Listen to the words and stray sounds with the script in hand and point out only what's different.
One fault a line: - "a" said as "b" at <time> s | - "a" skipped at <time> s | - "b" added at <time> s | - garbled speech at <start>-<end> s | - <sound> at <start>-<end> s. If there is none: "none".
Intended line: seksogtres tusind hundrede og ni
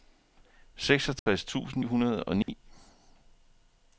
- dropout at 1.2-1.3 s
- dropout at 2.4-2.5 s